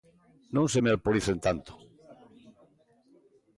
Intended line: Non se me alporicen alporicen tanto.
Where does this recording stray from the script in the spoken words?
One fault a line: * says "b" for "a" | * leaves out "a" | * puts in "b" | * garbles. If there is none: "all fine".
* leaves out "alporicen"